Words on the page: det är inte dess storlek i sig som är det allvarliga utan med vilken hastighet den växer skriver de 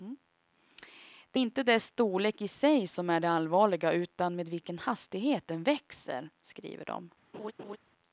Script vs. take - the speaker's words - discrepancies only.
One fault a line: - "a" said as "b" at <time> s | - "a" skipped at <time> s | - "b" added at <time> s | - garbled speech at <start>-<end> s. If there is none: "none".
- "är" skipped at 1.4 s